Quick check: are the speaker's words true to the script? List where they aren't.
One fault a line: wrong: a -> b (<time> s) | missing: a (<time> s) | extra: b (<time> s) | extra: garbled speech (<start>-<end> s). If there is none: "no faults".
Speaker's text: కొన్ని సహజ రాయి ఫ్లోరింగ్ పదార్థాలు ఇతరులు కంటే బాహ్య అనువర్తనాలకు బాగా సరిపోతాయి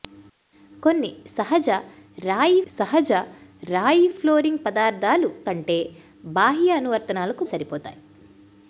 extra: సహజ రాయి (2.7 s)
missing: ఇతరులు (5.3 s)
missing: బాగా (7.4 s)